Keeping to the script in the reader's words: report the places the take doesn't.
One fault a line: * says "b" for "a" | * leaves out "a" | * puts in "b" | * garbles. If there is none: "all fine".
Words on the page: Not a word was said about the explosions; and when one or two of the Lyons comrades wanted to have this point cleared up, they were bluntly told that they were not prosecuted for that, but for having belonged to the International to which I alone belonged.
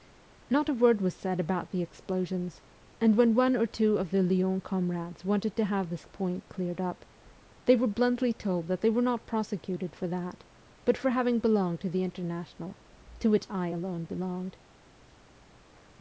all fine